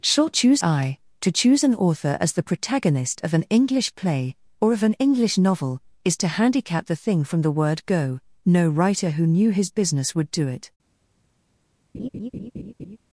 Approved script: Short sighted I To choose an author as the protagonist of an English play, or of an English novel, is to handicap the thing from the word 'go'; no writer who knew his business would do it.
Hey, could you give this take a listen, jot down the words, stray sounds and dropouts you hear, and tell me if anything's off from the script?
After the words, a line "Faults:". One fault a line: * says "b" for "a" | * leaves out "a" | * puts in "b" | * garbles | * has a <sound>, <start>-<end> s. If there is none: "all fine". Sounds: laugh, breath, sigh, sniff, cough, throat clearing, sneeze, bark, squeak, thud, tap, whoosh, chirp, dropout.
Short choose I To choose an author as the protagonist of an English play, or of an English novel, is to handicap the thing from the word 'go'; no writer who knew his business would do it.
Faults:
* says "choose" for "sighted"
* has a laugh, 11.9-13.0 s